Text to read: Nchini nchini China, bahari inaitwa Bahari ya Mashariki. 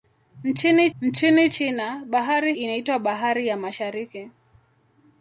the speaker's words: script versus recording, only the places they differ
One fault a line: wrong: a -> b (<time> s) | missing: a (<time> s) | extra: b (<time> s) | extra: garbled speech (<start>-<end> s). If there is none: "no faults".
no faults